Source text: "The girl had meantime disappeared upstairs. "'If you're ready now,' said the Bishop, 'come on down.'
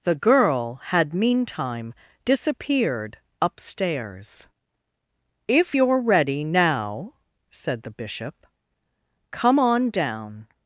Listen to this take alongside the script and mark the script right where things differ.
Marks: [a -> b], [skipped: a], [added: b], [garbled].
"The girl had meantime disappeared upstairs. "'If you're ready now,' said the Bishop, 'come on down.'